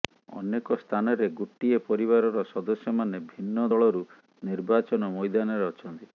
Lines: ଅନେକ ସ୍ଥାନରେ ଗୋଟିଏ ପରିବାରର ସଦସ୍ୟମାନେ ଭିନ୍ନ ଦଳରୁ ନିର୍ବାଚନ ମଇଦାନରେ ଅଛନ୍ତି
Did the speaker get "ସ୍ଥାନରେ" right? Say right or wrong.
right